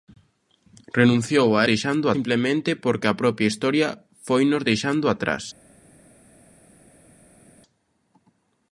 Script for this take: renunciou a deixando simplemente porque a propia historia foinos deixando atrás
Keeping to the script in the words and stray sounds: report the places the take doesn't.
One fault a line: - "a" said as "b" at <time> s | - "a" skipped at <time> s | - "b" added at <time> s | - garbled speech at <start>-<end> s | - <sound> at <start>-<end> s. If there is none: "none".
none